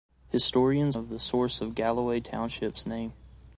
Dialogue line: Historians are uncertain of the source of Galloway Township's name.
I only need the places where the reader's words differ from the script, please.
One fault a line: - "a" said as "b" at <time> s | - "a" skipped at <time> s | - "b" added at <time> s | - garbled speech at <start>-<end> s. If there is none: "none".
- "are uncertain" skipped at 1.0 s